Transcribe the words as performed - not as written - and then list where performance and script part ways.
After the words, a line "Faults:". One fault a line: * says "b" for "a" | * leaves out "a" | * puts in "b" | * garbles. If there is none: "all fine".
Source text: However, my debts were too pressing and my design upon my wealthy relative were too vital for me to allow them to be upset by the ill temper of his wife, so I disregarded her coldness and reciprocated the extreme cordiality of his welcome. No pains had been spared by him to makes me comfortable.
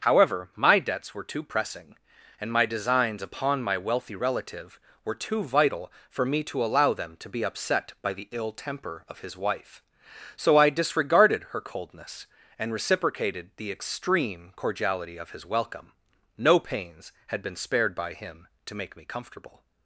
However, my debts were too pressing and my designs upon my wealthy relative were too vital for me to allow them to be upset by the ill temper of his wife, so I disregarded her coldness and reciprocated the extreme cordiality of his welcome. No pains had been spared by him to make me comfortable.
Faults:
* says "designs" for "design"
* says "make" for "makes"